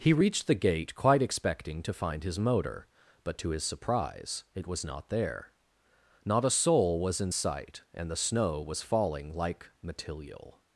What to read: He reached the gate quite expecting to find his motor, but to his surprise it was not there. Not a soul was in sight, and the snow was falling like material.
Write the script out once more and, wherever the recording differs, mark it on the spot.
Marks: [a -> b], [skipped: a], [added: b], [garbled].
He reached the gate quite expecting to find his motor, but to his surprise it was not there. Not a soul was in sight, and the snow was falling like material.